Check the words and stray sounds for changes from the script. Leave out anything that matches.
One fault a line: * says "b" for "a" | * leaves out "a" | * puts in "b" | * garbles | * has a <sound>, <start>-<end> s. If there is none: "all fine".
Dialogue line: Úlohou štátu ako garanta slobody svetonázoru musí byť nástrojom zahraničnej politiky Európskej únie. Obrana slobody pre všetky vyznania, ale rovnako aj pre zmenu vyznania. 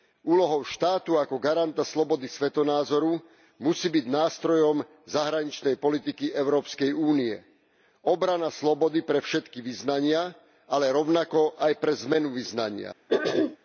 * has a throat clearing, 13.1-13.6 s